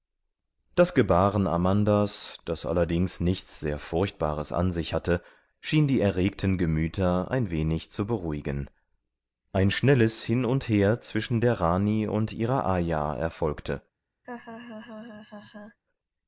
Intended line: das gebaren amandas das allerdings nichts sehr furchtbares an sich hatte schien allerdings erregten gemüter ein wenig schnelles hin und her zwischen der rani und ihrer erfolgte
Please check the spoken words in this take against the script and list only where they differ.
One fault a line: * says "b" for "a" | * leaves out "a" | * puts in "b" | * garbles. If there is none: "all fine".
* says "die" for "allerdings"
* puts in "zu beruhigen ein"
* puts in "ayah"